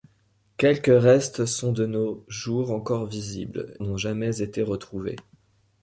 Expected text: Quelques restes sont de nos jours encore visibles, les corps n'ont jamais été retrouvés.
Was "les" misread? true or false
true